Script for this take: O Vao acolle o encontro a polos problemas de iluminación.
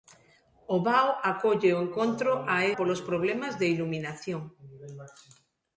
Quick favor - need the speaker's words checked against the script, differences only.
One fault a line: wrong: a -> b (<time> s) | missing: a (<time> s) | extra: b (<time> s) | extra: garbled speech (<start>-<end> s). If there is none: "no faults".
no faults